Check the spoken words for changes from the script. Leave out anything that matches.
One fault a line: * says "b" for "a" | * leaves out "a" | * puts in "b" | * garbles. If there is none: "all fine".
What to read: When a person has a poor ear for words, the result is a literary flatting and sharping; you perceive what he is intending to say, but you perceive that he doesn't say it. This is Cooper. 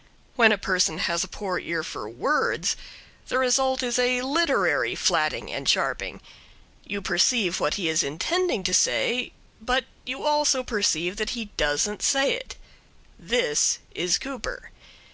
* puts in "also"